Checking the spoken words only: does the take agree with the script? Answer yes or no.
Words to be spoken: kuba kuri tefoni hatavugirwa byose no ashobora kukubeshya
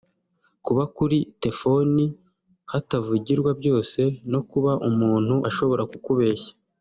no